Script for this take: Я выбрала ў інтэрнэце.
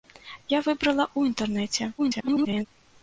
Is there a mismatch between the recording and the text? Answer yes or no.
yes